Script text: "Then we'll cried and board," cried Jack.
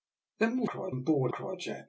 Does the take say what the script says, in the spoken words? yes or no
yes